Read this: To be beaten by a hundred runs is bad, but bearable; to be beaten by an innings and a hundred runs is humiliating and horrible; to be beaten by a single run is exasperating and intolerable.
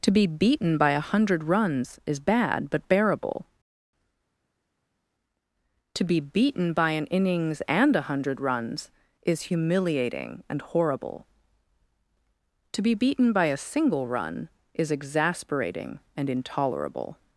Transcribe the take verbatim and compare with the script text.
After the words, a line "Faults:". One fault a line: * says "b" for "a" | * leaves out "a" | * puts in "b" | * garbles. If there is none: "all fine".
To be beaten by a hundred runs is bad, but bearable; to be beaten by an innings and a hundred runs is humiliating and horrible; to be beaten by a single run is exasperating and intolerable.
Faults:
all fine